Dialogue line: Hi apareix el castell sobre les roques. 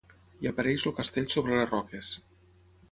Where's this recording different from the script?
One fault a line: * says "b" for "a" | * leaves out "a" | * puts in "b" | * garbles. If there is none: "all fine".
all fine